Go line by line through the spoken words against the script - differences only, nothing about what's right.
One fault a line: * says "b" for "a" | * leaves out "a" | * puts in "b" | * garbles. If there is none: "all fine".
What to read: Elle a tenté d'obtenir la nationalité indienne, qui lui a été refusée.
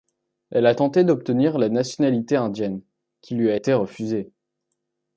all fine